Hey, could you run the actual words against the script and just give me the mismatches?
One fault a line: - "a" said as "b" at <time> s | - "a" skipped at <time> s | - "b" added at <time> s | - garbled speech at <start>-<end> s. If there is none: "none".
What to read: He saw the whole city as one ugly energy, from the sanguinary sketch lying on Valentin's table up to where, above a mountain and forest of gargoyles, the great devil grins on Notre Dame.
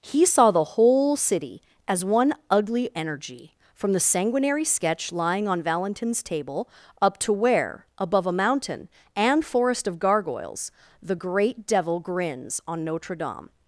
none